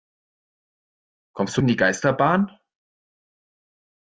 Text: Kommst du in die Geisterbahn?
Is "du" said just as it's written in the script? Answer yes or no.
yes